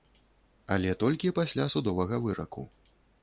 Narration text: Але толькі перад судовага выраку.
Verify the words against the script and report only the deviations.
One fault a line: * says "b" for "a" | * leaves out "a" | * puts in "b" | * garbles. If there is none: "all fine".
* says "пасля" for "перад"